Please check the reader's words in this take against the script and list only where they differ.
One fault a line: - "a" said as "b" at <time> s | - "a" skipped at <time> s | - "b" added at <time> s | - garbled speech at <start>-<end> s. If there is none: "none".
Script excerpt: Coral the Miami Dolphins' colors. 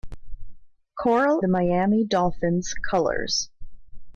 none